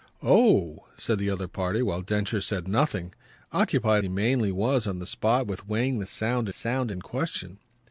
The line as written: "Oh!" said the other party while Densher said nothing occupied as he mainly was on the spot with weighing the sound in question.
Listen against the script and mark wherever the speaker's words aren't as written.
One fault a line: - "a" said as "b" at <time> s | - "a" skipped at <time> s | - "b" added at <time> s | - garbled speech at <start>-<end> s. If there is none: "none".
- "as" skipped at 4.0 s
- "sound" added at 6.5 s